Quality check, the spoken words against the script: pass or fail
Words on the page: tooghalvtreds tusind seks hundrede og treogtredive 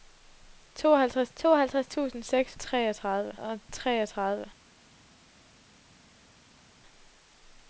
fail